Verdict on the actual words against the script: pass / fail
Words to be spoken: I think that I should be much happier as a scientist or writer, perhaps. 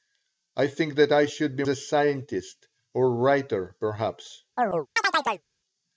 fail